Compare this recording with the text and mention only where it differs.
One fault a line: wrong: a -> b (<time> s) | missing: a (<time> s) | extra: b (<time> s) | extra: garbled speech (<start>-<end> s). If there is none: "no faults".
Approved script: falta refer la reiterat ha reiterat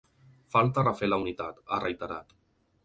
wrong: reiterat -> unitat (1.2 s)